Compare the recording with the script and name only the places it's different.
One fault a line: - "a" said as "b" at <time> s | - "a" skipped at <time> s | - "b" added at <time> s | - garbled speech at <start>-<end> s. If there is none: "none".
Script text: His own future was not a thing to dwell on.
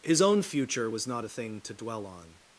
none